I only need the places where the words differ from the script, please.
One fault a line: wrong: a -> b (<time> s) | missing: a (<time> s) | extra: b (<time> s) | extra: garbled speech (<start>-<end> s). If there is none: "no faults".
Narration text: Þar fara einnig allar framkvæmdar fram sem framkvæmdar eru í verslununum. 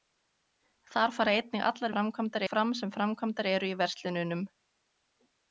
no faults